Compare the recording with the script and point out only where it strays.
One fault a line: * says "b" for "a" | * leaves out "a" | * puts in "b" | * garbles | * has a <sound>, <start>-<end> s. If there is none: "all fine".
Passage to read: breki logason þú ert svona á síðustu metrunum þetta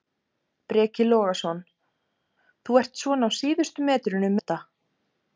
all fine